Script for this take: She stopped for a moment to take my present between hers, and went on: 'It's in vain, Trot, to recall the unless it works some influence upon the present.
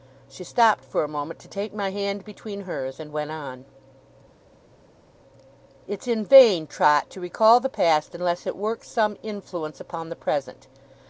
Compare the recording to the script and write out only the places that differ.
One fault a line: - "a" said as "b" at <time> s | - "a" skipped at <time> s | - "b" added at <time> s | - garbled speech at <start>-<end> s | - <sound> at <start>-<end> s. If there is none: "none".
- "present" said as "hand" at 1.9 s
- "past" added at 7.7 s